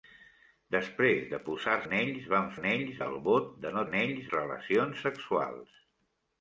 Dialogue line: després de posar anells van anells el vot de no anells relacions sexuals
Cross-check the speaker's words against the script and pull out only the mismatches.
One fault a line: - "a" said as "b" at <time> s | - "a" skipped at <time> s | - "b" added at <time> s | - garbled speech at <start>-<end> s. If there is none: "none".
none